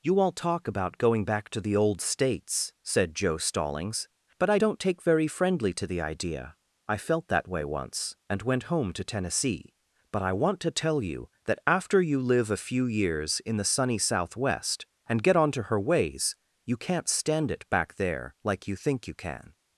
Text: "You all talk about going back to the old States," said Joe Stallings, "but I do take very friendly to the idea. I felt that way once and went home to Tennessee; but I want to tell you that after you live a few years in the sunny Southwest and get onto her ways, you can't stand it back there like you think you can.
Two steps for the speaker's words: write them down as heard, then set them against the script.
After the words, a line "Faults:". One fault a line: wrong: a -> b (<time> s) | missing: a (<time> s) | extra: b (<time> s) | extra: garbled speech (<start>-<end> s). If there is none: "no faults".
"You all talk about going back to the old States," said Joe Stallings, "but I don't take very friendly to the idea. I felt that way once and went home to Tennessee; but I want to tell you that after you live a few years in the sunny Southwest and get onto her ways, you can't stand it back there like you think you can.
Faults:
wrong: do -> don't (4.5 s)